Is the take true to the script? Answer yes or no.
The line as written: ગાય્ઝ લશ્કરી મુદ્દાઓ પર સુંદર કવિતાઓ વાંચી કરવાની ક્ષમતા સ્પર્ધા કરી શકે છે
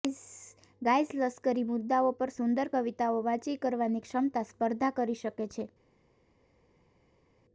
yes